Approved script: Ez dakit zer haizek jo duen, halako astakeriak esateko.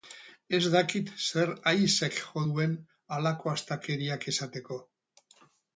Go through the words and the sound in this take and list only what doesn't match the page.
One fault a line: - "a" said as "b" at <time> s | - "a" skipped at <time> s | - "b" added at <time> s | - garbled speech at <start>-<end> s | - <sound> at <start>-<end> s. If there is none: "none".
none